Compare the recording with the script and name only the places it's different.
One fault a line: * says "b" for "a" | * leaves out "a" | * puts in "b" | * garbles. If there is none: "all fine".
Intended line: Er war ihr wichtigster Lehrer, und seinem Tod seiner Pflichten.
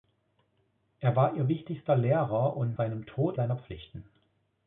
all fine